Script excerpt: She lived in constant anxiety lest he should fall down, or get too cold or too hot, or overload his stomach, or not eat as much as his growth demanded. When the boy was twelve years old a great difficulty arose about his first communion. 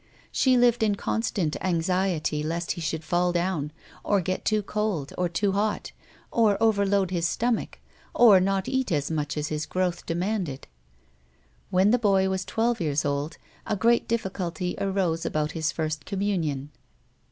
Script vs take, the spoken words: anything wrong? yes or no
no